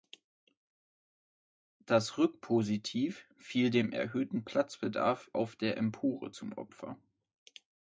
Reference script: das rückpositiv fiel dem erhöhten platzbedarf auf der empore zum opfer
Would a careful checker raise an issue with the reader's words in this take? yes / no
no